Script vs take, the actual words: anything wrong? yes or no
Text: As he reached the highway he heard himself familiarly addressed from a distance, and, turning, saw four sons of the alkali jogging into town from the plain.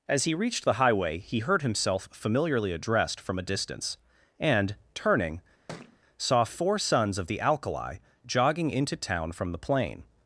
no